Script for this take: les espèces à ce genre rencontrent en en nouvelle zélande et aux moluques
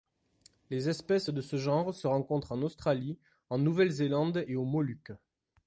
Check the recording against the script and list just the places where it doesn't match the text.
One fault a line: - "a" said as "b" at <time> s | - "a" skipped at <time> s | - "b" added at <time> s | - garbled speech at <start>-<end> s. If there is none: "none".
- "à" said as "de" at 1.3 s
- "se" added at 1.9 s
- "australie" added at 2.6 s